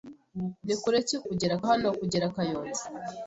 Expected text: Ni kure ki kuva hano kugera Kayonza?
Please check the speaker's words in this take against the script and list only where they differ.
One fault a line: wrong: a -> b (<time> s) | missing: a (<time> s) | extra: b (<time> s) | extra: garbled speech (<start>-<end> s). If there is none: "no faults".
wrong: kuva -> kugera (1.3 s)